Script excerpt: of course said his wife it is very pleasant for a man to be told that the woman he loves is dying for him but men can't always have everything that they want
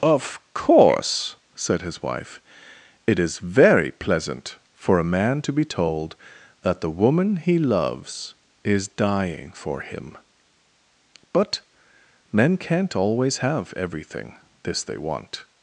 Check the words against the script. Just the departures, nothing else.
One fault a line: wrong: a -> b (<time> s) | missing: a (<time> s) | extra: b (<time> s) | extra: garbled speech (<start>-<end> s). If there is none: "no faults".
wrong: that -> this (14.6 s)